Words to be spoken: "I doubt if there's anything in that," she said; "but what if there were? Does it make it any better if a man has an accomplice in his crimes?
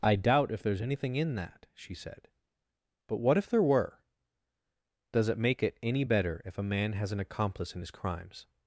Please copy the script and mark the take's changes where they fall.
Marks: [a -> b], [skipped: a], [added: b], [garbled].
"I doubt if there's anything in that," she said; "but what if there were? Does it make it any better if a man has an accomplice in his crimes?